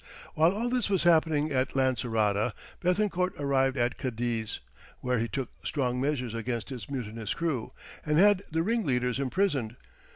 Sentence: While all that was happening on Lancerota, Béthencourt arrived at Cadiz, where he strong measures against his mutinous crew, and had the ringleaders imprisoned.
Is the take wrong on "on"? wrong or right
wrong